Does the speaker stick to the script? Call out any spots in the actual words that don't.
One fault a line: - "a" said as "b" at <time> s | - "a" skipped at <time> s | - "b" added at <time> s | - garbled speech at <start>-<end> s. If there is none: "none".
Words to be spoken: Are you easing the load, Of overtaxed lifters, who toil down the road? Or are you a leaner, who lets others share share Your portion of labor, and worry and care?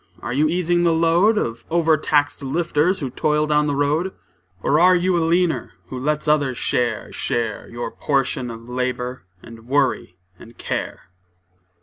none